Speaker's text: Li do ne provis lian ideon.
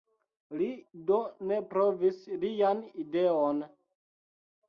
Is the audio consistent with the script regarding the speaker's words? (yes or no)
yes